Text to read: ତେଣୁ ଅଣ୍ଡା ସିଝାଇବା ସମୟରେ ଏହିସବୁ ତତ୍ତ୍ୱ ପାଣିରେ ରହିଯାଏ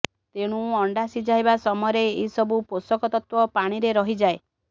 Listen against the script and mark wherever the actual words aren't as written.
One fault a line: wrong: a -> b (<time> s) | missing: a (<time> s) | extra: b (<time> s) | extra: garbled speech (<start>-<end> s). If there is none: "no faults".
extra: ପୋଷକ (2.7 s)